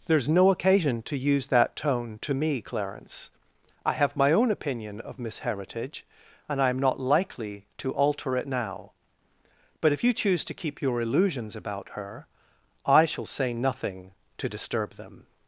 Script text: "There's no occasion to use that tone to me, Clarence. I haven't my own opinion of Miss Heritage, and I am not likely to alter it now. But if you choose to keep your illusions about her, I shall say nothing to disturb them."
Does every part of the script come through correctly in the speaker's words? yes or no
no